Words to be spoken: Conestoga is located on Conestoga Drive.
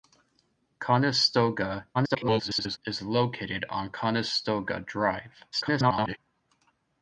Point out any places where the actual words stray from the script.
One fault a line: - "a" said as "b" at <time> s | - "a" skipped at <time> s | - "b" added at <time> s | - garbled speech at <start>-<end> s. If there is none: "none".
- garbled speech at 1.9-2.8 s
- garbled speech at 5.5-6.2 s